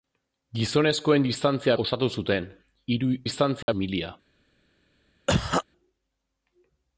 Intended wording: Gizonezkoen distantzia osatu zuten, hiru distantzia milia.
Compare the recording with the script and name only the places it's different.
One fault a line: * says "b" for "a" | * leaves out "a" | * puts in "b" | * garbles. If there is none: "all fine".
all fine